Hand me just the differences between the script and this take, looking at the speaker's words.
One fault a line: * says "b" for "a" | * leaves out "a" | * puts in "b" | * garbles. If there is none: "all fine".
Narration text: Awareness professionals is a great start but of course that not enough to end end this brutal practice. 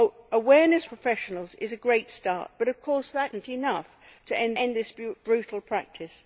all fine